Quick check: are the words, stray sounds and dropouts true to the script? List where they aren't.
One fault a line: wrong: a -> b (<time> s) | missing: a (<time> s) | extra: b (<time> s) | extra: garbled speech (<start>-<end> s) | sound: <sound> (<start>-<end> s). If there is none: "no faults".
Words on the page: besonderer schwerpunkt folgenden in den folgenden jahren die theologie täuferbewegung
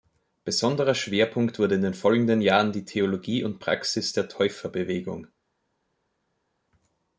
wrong: folgenden -> wurde (1.6 s)
extra: und praxis der (3.4 s)